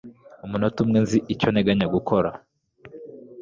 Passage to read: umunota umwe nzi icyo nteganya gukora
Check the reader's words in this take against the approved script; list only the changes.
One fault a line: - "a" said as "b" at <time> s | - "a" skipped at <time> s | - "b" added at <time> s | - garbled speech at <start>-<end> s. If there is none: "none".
none